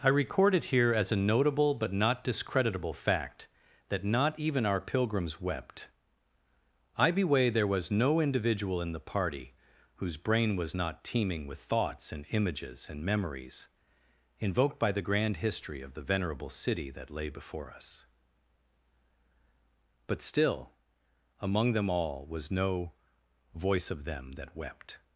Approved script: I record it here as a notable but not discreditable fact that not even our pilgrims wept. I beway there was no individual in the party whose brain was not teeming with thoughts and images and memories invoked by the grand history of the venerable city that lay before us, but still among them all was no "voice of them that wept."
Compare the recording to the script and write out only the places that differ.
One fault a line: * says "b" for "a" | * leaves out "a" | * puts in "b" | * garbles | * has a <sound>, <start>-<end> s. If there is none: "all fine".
all fine